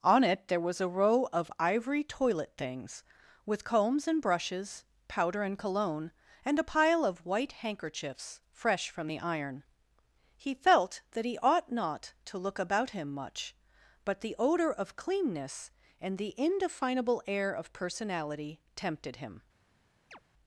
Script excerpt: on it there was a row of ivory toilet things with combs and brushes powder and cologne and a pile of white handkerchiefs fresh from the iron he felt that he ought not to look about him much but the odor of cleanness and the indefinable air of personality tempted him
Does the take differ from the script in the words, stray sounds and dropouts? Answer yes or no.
yes